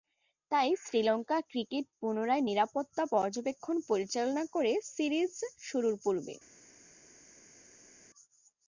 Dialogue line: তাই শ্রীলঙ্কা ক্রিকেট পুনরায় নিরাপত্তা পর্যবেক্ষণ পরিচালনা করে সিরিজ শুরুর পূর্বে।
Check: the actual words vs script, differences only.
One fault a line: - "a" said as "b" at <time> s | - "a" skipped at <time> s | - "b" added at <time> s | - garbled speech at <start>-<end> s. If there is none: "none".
none